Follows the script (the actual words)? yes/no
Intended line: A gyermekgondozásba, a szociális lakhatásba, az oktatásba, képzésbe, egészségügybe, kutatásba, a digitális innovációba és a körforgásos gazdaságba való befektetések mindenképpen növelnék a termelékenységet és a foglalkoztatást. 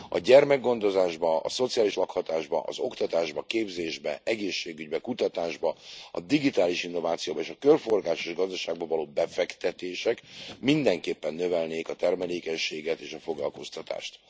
yes